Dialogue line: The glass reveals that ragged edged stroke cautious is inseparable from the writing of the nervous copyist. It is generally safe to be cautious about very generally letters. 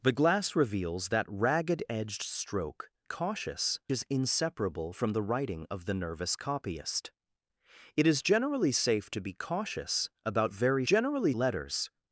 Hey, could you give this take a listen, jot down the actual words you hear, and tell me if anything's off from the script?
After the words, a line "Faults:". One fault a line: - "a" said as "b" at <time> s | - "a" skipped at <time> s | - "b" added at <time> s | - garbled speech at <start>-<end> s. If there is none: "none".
The glass reveals that ragged edged stroke cautious is inseparable from the writing of the nervous copyist. It is generally safe to be cautious about very generally letters.
Faults:
none